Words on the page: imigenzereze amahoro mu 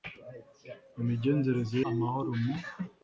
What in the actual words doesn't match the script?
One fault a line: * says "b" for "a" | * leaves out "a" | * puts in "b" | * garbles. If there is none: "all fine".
all fine